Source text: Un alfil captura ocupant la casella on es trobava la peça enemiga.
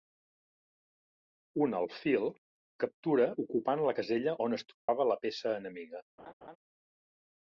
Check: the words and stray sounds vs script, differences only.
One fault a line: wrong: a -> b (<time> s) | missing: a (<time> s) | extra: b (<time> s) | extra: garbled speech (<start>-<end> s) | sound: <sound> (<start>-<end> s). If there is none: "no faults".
sound: dropout (4.7-4.9 s)
sound: laugh (6.2-6.6 s)